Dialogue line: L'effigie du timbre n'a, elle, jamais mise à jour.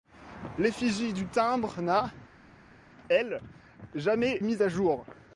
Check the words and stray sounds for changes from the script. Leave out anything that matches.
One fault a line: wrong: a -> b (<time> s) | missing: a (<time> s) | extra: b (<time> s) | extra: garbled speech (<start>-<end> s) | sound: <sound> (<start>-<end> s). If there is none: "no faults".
no faults